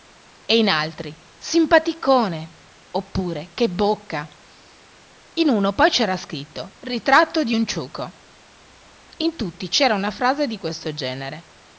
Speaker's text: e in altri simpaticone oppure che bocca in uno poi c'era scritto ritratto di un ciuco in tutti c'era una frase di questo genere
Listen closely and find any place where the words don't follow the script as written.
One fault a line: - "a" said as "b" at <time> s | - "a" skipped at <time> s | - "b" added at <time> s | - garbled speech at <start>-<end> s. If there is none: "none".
none